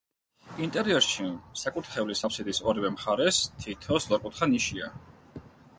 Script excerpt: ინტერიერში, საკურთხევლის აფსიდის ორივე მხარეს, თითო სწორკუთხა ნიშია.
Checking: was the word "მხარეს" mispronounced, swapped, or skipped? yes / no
no